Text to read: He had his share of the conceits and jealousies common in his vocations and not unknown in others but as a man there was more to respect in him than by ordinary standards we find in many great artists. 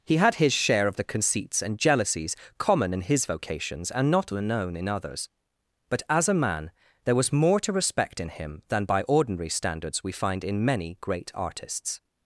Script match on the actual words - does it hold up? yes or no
yes